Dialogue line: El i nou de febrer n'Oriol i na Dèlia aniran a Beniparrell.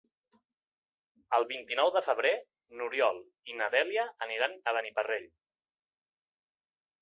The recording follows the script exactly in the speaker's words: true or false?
false